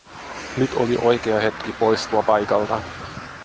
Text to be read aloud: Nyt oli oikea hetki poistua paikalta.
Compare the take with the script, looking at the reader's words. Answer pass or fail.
pass